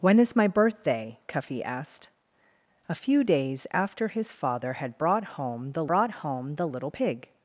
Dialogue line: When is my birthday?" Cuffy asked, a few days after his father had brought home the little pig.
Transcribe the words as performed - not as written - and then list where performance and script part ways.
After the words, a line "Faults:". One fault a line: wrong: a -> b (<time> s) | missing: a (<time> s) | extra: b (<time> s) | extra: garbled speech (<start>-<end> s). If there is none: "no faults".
When is my birthday?" Cuffy asked, a few days after his father had brought home the brought home the little pig.
Faults:
extra: brought home the (5.9 s)